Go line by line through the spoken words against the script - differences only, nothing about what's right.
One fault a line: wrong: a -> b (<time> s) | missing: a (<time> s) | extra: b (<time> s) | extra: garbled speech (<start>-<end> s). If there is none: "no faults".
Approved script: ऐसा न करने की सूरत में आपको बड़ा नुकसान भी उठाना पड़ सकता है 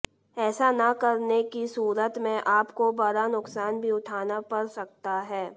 no faults